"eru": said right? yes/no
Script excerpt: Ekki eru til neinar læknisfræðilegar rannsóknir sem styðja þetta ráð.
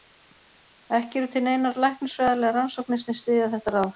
yes